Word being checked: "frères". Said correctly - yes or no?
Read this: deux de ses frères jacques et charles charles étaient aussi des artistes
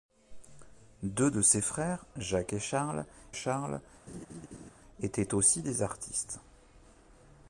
yes